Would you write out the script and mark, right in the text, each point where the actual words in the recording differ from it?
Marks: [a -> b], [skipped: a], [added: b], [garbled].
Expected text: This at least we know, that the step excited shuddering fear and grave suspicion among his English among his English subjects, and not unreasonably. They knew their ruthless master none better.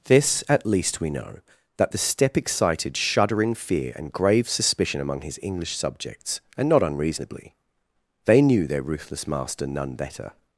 This at least we know, that the step excited shuddering fear and grave suspicion among his English [skipped: among his English] subjects, and not unreasonably. They knew their ruthless master none better.